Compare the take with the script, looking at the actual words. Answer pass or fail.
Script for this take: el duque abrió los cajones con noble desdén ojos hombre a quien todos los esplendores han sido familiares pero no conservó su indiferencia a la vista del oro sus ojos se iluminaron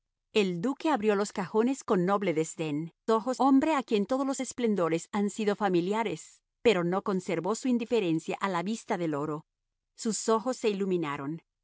pass